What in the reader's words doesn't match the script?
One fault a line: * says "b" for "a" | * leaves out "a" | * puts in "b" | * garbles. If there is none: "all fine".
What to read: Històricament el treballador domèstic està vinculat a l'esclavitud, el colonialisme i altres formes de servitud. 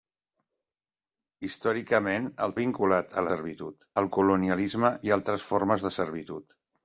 * leaves out "treballador domèstic està"
* says "servitud" for "l'esclavitud"